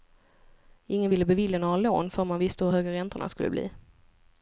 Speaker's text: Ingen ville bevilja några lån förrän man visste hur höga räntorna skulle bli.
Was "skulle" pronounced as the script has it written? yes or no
yes